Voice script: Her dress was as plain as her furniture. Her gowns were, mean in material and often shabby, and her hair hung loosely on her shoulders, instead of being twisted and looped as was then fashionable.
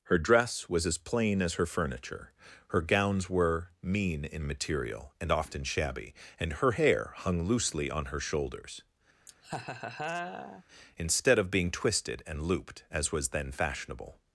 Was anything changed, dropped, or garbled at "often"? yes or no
no